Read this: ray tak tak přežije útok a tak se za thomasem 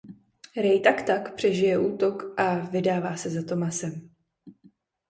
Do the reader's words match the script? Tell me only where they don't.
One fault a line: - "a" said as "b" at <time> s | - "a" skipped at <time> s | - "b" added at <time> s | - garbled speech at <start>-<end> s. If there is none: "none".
- "tak" said as "vydává" at 2.5 s